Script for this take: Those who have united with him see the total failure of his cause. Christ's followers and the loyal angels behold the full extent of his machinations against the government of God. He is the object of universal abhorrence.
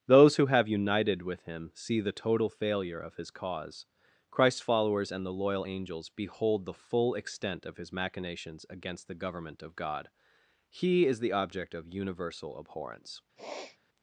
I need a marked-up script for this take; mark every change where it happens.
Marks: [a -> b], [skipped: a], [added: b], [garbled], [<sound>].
Those who have united with him see the total failure of his cause. Christ's followers and the loyal angels behold the full extent of his machinations against the government of God. He is the object of universal abhorrence. [sniff]